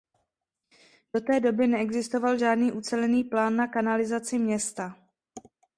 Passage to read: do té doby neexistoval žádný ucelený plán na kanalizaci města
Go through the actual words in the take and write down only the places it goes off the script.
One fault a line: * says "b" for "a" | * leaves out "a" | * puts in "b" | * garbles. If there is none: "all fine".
all fine